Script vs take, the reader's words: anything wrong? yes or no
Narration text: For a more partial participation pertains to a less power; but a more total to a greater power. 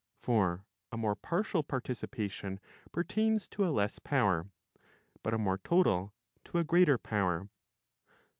no